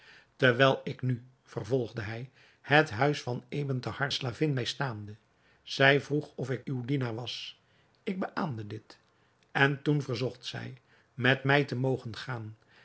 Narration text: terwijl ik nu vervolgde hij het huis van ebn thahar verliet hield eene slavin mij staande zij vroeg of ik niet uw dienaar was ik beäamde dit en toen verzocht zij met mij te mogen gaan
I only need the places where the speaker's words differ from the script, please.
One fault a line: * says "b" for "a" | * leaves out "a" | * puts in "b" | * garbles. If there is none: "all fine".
* leaves out "verliet hield eene"
* leaves out "niet"